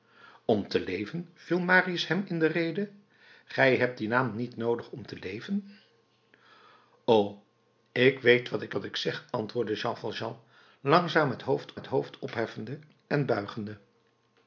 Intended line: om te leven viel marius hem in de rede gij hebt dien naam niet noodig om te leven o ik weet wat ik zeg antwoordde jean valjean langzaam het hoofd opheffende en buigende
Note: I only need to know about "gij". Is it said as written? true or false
true